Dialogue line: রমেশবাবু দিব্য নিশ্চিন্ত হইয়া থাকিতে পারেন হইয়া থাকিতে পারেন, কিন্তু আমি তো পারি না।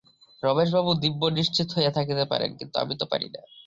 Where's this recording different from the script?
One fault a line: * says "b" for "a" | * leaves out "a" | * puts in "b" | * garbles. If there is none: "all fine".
* leaves out "হইয়া থাকিতে পারেন"